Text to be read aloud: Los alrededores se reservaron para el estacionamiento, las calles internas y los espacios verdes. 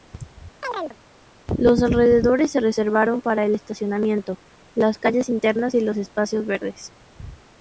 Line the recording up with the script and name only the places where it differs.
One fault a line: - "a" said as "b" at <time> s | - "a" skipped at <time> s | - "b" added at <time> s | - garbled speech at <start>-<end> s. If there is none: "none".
none